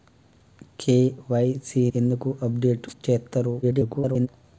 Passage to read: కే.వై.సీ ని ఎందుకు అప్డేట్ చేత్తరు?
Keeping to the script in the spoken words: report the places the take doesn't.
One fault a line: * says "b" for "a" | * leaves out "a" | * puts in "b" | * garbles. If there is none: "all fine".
* leaves out "ని"
* garbles